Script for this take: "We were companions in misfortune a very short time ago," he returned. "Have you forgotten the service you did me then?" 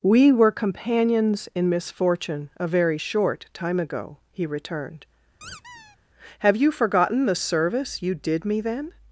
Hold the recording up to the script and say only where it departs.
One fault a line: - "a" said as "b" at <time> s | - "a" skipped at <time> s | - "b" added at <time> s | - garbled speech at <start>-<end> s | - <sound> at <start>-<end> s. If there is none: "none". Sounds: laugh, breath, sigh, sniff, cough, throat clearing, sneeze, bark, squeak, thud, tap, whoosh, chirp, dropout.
- squeak at 5.4-6.0 s